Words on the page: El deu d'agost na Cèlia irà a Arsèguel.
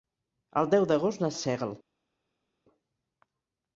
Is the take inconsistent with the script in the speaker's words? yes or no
yes